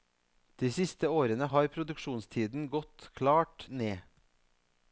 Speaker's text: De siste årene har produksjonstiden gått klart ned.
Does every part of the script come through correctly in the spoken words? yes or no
yes